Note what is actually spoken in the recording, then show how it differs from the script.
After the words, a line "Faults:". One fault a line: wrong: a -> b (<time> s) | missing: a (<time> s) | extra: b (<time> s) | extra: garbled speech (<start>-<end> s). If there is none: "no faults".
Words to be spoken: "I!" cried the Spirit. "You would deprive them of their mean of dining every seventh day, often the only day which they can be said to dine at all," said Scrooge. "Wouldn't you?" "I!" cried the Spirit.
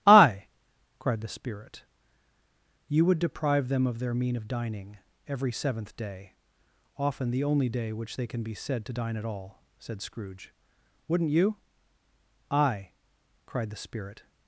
"I!" cried the Spirit. "You would deprive them of their mean of dining every seventh day, often the only day which they can be said to dine at all," said Scrooge. "Wouldn't you?" "I!" cried the Spirit.
Faults:
no faults